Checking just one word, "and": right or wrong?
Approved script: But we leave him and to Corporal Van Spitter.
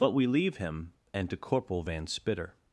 right